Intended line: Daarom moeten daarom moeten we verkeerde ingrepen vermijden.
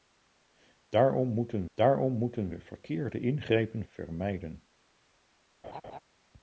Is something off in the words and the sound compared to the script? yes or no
yes